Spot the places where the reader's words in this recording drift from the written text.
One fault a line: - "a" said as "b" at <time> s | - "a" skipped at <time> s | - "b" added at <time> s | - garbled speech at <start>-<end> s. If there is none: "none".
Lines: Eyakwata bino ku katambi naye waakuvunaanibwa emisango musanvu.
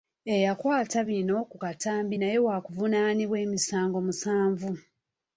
none